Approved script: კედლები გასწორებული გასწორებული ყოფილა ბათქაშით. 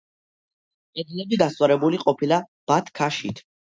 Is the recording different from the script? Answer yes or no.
yes